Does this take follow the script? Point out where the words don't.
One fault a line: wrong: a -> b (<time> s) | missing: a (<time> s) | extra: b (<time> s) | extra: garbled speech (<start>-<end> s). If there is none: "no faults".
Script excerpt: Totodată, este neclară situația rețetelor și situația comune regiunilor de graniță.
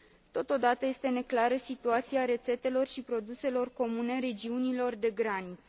wrong: situația -> produselor (3.0 s)